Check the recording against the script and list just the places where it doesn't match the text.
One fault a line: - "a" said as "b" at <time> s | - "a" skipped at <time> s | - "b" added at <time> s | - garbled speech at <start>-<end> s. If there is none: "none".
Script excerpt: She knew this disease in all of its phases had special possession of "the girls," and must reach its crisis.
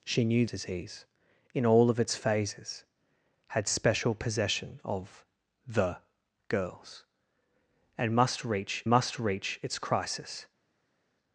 - "this" skipped at 0.5 s
- "must reach" added at 8.9 s